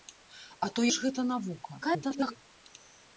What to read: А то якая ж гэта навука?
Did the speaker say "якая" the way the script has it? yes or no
no